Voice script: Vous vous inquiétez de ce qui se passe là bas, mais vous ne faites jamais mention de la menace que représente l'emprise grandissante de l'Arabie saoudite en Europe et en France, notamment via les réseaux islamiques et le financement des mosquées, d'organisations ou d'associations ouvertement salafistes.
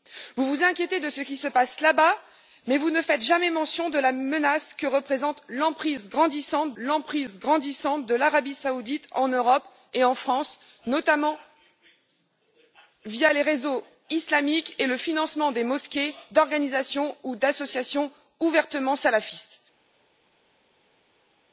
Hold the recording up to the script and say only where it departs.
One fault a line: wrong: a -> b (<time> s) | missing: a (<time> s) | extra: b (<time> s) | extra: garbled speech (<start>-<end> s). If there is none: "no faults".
extra: l'emprise grandissante (6.7 s)